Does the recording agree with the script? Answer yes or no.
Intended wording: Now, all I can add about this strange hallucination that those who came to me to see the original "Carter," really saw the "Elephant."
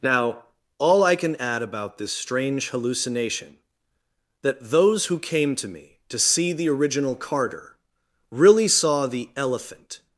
yes